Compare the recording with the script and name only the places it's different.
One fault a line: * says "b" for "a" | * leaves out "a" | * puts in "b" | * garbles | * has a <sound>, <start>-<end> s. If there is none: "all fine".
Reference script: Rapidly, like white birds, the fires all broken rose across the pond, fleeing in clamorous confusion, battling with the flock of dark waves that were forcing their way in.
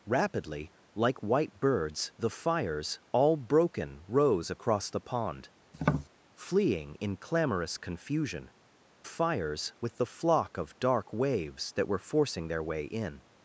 * has a tap, 5.7-6.1 s
* says "fires" for "battling"